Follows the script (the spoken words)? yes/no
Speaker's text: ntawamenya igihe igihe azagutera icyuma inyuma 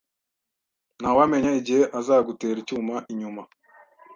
no